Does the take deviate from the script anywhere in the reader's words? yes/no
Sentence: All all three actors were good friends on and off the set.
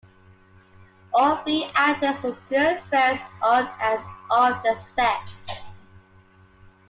yes